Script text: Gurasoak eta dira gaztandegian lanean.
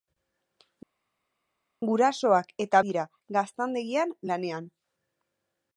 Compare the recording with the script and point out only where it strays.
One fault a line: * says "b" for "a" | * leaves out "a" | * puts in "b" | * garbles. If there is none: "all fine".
all fine